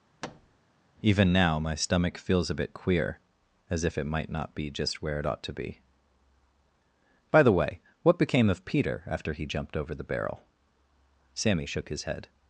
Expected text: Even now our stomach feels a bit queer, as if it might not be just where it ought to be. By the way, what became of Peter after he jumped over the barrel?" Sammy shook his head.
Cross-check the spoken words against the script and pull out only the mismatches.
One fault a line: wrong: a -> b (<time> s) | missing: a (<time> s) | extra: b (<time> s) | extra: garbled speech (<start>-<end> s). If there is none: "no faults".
wrong: our -> my (1.6 s)